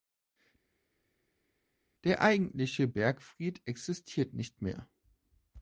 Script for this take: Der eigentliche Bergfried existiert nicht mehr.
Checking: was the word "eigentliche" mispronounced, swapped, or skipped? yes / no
no